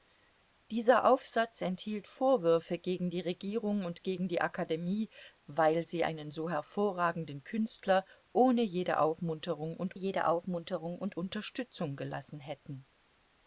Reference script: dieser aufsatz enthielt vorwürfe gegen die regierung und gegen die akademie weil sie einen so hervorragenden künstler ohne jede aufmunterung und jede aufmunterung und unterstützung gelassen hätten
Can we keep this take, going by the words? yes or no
yes